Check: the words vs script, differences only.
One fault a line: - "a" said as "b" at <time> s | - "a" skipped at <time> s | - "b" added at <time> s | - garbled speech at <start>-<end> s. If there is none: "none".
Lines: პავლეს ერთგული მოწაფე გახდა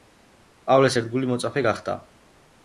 none